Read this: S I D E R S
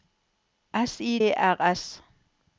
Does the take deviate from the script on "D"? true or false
true